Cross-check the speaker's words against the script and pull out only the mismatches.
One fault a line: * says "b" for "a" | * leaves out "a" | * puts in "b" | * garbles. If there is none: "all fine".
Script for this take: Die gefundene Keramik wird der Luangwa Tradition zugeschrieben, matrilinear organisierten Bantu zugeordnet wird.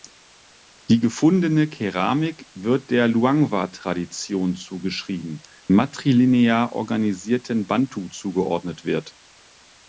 all fine